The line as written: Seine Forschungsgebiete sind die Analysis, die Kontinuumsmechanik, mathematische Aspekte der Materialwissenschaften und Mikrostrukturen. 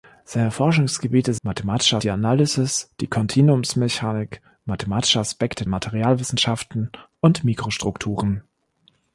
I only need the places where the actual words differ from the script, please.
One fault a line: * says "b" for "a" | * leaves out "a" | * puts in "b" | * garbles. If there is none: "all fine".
* says "mathematische" for "sind"
* leaves out "der"